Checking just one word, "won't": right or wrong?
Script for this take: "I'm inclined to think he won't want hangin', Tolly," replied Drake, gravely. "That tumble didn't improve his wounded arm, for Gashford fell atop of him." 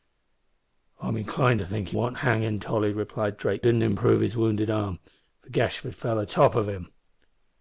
wrong